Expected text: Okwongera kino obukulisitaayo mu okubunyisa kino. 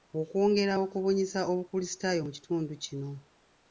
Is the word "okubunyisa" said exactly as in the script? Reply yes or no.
no